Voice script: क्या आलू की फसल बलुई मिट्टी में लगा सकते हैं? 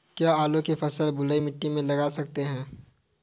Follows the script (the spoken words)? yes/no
yes